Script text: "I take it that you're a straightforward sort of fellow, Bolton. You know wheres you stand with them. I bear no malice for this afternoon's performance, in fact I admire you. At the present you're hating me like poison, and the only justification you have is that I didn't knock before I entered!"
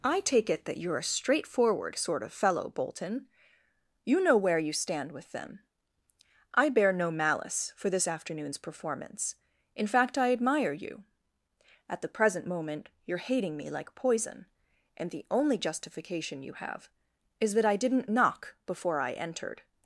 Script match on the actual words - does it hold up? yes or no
no